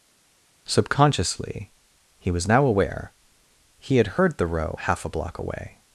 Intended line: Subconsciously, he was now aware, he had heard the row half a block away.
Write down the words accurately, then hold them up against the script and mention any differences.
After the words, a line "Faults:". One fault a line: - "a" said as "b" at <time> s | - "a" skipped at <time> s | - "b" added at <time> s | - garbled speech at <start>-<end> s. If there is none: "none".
Subconsciously, he was now aware, he had heard the row half a block away.
Faults:
none